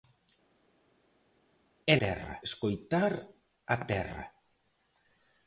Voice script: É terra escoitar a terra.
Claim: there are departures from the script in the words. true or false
false